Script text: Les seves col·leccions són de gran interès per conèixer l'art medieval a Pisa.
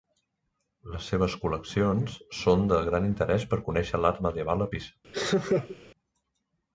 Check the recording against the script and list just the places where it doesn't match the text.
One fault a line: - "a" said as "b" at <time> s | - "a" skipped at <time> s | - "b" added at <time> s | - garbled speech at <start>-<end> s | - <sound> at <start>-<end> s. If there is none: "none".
- laugh at 5.1-5.8 s